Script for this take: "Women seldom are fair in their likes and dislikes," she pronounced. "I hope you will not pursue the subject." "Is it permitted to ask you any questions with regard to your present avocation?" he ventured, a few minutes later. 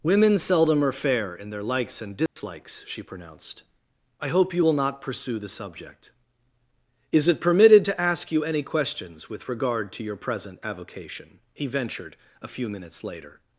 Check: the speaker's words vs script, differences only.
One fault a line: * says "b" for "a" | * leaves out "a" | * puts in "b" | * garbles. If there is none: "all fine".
all fine